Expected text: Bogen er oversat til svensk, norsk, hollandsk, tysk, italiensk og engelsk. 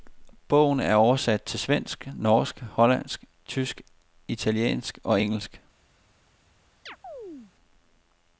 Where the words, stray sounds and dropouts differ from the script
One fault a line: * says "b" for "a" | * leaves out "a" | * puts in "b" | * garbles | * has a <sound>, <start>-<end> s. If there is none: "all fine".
* has a chirp, 6.9-7.5 s